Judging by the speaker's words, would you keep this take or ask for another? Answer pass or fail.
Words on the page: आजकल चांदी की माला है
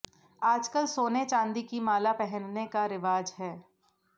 fail